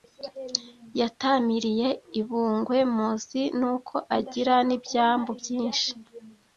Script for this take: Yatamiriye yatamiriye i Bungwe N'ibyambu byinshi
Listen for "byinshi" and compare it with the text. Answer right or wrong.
right